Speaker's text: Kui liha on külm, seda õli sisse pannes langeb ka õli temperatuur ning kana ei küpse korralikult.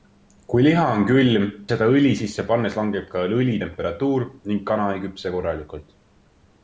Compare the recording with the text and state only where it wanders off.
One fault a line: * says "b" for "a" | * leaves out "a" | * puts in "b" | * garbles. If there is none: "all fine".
all fine